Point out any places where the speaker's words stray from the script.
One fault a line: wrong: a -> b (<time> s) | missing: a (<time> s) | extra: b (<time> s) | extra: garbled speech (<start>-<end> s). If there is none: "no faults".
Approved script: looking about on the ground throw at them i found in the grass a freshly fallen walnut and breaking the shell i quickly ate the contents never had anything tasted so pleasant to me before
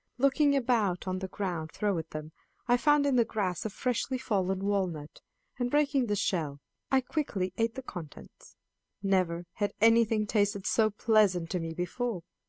no faults